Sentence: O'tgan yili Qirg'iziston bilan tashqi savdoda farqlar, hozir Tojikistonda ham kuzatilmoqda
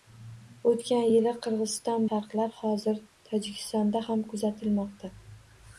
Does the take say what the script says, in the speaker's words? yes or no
no